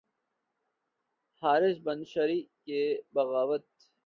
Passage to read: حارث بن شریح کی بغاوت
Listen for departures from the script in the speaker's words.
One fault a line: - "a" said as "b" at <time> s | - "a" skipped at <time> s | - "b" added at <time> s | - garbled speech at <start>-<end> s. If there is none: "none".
none